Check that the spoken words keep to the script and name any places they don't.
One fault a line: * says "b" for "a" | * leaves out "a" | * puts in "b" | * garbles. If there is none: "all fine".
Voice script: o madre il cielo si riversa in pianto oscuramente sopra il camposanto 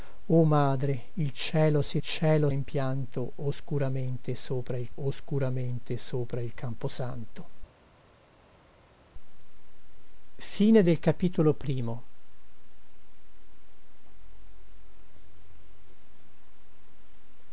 * says "cielo" for "riversa"
* puts in "oscuramente sopra il"